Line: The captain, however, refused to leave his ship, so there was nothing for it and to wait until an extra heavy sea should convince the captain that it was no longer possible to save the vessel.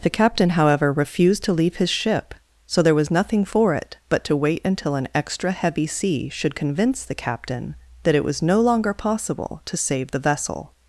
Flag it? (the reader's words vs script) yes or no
yes